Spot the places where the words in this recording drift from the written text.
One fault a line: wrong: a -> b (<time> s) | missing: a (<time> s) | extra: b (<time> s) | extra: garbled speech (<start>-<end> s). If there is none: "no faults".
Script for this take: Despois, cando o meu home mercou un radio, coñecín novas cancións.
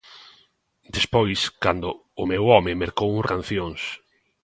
missing: radio coñecín novas (3.2 s)